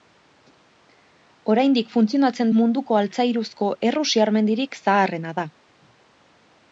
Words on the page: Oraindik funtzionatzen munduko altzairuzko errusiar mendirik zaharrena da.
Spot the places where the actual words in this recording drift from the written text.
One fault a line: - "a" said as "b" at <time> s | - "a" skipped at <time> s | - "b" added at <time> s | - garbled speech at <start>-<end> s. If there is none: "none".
none